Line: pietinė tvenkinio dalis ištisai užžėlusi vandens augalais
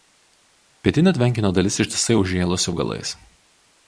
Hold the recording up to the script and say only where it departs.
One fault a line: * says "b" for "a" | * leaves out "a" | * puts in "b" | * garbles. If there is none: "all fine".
* leaves out "vandens"